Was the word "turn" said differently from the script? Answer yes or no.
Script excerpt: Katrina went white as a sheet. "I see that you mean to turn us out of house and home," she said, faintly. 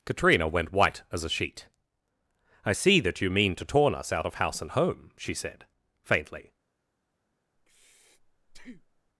yes